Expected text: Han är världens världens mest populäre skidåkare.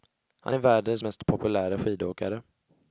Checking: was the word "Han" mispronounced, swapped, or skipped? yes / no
no